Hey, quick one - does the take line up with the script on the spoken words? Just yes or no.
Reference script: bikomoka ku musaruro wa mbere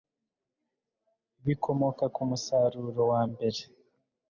yes